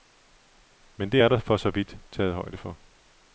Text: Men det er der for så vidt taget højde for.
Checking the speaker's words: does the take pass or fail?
pass